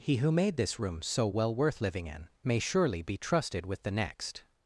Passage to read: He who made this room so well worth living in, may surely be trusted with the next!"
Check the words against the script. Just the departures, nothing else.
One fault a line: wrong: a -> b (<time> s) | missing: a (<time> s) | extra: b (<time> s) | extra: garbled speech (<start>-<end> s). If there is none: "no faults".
no faults